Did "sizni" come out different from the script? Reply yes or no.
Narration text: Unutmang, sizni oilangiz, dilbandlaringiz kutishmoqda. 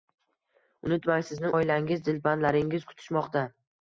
no